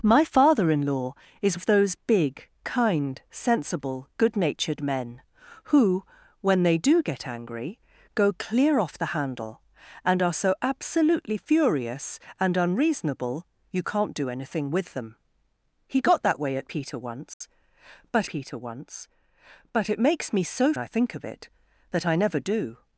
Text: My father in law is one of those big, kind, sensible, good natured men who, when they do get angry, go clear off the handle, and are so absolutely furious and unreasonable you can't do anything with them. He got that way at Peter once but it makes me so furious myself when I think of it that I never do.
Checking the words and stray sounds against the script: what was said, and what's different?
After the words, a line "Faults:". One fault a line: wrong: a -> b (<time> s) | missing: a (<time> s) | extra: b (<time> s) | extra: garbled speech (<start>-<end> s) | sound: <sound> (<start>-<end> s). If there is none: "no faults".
My father in law is of those big, kind, sensible, good natured men who, when they do get angry, go clear off the handle, and are so absolutely furious and unreasonable you can't do anything with them. He got that way at Peter once but Peter once but it makes me so I think of it that I never do.
Faults:
missing: one (1.6 s)
sound: dropout (17.3-17.4 s)
extra: Peter once but (18.3 s)
missing: furious myself when (20.7 s)